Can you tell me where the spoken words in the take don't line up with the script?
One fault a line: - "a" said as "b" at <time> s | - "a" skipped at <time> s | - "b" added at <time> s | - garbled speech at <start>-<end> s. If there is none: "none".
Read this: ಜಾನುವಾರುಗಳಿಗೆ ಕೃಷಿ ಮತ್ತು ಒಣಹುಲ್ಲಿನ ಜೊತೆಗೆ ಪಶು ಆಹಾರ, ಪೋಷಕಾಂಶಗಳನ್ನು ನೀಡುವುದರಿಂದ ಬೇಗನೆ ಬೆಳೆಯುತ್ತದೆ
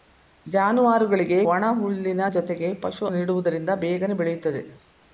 - "ಕೃಷಿ ಮತ್ತು" skipped at 1.4 s
- "ಆಹಾರ ಪೋಷಕಾಂಶಗಳನ್ನು" skipped at 3.1 s